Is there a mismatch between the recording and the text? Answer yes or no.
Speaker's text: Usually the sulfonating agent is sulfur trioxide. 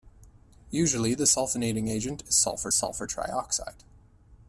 yes